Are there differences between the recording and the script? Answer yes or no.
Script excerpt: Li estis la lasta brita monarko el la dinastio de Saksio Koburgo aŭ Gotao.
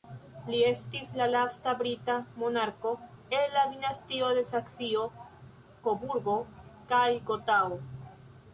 yes